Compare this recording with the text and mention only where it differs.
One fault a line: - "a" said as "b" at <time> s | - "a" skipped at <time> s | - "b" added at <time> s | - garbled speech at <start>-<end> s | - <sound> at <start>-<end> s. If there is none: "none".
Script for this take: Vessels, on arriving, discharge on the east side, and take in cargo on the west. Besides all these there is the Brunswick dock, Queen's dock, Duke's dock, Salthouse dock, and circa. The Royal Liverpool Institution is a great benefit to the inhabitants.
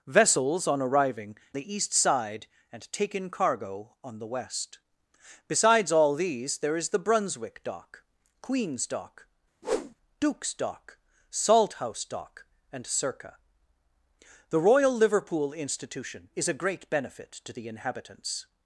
- "discharge on" skipped at 1.4 s
- whoosh at 9.6-10.0 s